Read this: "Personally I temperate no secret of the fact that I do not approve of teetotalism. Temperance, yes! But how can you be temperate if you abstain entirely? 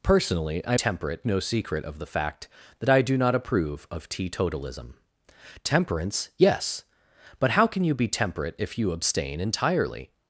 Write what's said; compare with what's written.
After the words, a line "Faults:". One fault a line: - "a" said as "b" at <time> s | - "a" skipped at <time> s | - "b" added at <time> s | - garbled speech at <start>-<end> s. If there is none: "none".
"Personally I temperate no secret of the fact that I do not approve of teetotalism. Temperance, yes! But how can you be temperate if you abstain entirely?
Faults:
none